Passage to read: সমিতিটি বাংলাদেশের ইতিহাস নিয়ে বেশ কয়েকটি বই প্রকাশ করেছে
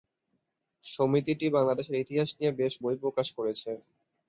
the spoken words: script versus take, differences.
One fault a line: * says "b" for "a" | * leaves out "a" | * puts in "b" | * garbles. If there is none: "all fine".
* leaves out "কয়েকটি"